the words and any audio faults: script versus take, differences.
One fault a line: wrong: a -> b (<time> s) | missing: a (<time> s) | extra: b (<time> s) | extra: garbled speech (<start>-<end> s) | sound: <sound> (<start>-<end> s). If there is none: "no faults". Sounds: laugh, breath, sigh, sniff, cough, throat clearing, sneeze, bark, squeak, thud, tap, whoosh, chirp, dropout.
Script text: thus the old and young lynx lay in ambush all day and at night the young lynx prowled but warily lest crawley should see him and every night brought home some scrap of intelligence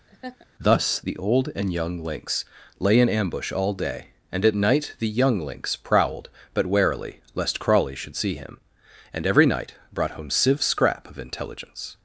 sound: laugh (0.1-0.5 s)
wrong: some -> sieve (10.3 s)